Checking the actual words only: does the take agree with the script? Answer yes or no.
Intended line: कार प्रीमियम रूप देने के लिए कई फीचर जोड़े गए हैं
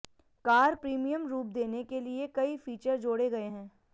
yes